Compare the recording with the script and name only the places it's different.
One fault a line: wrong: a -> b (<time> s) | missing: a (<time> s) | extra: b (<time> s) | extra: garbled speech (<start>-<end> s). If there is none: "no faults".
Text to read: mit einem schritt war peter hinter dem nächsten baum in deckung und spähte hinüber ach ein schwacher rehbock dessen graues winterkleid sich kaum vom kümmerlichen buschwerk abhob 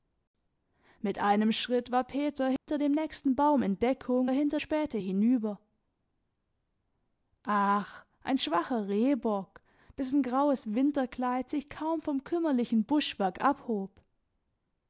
wrong: und -> hinter (4.3 s)